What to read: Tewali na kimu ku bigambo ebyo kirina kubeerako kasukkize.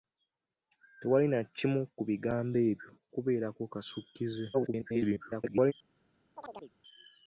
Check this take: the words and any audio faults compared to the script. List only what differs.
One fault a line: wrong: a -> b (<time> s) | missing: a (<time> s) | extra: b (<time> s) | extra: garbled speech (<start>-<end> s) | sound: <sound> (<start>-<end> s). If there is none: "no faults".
missing: kirina (2.9 s)
extra: garbled speech (4.5-5.7 s)
sound: chirp (6.4-6.7 s)